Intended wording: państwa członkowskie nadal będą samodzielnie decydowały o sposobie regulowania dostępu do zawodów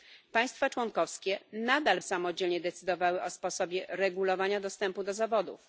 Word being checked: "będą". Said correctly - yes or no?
no